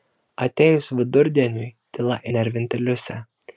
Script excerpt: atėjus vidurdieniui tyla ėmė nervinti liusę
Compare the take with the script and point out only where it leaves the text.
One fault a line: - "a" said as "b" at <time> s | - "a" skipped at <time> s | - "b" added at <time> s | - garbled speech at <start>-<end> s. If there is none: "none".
- "ėmė" skipped at 2.2 s